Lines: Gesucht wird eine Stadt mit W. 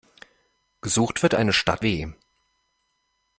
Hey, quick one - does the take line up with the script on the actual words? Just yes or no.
no